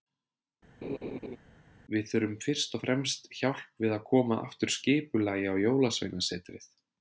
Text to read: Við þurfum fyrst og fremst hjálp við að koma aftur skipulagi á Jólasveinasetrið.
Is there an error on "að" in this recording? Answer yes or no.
no